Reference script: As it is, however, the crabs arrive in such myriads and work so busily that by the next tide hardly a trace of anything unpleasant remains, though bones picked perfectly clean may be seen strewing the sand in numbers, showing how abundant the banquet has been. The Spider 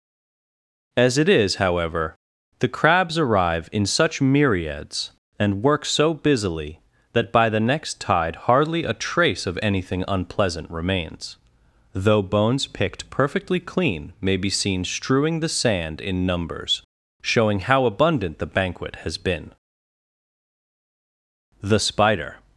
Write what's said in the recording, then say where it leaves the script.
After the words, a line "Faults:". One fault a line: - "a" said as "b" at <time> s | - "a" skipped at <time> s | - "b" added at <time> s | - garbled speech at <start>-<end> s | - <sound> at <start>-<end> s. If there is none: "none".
As it is, however, the crabs arrive in such myriads and work so busily that by the next tide hardly a trace of anything unpleasant remains, though bones picked perfectly clean may be seen strewing the sand in numbers, showing how abundant the banquet has been. The Spider
Faults:
none